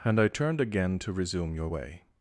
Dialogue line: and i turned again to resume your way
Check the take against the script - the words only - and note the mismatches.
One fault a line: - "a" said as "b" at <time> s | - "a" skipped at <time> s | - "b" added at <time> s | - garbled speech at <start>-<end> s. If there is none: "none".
none